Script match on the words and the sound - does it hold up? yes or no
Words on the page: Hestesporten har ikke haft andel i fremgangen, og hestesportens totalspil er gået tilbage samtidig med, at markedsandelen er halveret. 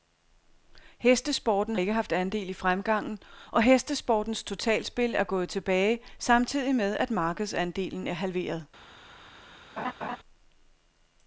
no